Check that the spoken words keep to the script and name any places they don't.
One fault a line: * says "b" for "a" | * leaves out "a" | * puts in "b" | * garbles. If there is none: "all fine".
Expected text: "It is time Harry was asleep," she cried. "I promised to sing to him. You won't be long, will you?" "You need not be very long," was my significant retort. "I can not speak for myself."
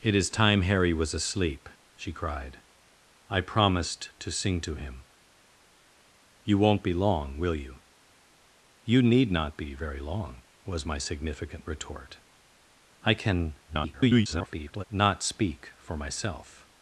* garbles